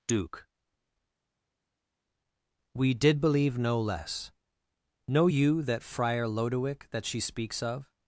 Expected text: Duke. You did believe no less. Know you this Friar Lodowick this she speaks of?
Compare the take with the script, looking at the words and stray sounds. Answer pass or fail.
fail